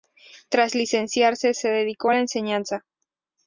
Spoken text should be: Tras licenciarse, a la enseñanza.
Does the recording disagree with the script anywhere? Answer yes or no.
yes